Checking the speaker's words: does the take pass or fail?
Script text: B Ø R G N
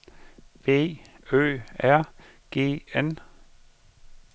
pass